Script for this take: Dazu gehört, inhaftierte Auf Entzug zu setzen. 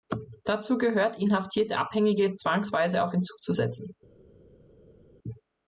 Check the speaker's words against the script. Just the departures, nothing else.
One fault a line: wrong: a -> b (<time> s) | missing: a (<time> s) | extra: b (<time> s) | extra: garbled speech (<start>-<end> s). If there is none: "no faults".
extra: Abhängige zwangsweise (1.7 s)